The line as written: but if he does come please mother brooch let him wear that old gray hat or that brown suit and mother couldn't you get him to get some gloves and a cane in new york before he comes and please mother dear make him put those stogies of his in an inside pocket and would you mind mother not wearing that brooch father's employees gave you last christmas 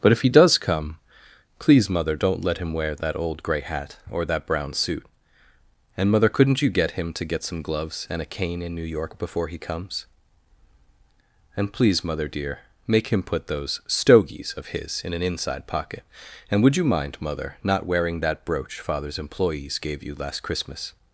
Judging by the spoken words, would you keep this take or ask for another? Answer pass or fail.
fail